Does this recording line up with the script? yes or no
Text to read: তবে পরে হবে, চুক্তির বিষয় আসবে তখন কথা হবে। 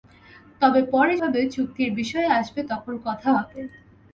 yes